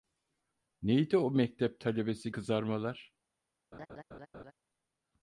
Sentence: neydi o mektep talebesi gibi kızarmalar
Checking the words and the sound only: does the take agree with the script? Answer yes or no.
no